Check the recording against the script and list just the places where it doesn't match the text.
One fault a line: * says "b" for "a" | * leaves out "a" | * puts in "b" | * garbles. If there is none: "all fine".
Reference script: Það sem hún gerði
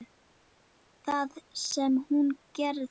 all fine